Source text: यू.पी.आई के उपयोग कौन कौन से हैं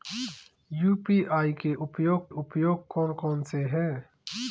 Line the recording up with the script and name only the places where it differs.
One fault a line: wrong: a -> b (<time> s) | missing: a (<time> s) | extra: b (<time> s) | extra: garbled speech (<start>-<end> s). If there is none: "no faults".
extra: उपयोग (2.3 s)